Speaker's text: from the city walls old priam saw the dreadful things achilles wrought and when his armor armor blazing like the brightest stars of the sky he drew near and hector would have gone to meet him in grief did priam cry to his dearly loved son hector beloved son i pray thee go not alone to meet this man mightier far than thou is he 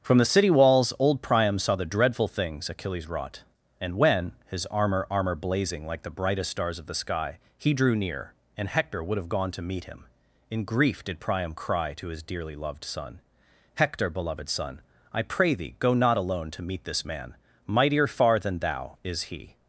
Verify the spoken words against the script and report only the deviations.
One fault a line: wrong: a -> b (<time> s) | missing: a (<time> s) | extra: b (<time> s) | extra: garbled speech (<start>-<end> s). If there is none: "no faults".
no faults